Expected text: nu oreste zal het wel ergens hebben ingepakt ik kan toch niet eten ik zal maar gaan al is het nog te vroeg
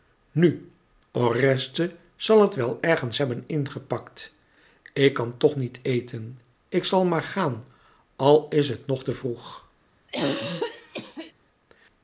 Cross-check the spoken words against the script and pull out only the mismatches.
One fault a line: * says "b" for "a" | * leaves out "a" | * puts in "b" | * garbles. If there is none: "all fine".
all fine